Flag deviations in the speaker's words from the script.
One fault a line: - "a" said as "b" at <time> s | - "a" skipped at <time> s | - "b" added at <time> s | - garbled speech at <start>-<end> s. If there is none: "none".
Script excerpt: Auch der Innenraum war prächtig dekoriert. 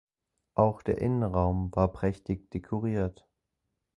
none